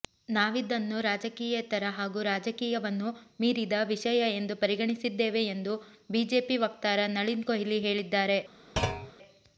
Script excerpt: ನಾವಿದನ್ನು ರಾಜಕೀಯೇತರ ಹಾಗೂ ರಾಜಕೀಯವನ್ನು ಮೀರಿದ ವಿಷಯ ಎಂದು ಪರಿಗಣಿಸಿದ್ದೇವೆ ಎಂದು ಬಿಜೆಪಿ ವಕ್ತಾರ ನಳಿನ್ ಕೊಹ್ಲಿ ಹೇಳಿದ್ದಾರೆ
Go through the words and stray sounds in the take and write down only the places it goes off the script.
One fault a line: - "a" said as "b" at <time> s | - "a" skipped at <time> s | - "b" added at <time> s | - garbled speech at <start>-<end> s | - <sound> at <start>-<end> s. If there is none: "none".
- thud at 8.8-9.1 s